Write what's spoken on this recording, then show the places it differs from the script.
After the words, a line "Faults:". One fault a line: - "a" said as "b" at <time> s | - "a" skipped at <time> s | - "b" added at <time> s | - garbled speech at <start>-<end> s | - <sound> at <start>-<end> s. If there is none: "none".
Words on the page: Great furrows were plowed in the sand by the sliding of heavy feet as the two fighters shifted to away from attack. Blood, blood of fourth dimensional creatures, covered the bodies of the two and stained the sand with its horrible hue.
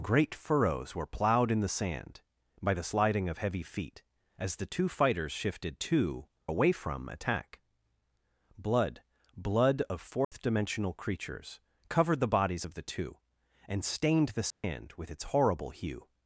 Great furrows were plowed in the sand by the sliding of heavy feet as the two fighters shifted to away from attack. Blood, blood of fourth dimensional creatures, covered the bodies of the two and stained the sand with its horrible hue.
Faults:
- dropout at 10.2-10.3 s
- dropout at 14.5-14.6 s